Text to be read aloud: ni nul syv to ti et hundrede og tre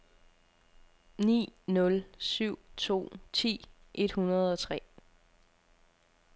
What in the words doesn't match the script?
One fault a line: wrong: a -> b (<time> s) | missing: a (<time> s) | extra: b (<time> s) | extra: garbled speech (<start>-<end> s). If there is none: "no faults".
no faults